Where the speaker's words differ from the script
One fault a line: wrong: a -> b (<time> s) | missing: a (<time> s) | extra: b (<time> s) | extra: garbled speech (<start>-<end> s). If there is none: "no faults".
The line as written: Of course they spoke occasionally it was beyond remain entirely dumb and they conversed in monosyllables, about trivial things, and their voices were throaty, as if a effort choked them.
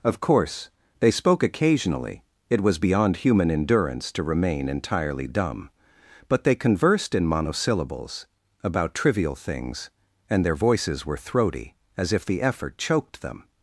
extra: human endurance to (3.2 s)
wrong: and -> but (6.3 s)
wrong: a -> the (12.2 s)